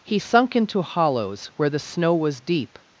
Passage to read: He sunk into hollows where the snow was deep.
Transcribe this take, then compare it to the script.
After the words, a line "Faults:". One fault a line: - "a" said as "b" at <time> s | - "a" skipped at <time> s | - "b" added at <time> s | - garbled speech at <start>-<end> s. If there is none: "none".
He sunk into hollows where the snow was deep.
Faults:
none